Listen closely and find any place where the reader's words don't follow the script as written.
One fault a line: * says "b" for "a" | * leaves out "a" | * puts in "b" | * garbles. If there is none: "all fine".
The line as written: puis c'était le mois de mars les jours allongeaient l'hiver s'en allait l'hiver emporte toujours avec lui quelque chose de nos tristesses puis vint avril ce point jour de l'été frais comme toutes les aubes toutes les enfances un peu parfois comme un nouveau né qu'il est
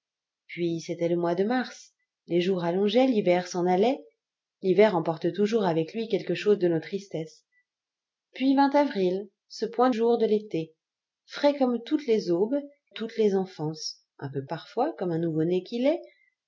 all fine